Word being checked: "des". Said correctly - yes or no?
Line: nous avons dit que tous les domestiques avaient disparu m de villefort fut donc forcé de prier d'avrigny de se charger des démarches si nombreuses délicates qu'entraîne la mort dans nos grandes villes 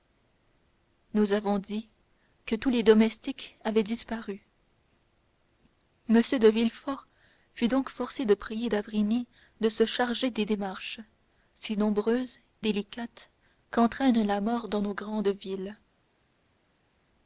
yes